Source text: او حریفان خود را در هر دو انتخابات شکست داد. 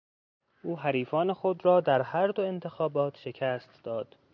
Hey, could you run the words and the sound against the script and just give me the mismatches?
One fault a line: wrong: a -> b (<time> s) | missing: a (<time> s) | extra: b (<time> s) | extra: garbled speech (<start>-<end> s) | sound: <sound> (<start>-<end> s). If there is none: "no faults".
no faults